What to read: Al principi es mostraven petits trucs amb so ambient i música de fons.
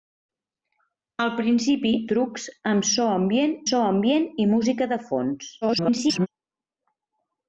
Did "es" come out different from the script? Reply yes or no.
yes